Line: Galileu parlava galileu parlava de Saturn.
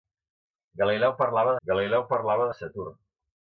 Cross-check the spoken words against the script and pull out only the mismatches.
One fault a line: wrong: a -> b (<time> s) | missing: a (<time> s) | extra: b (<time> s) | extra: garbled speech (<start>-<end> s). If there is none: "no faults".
no faults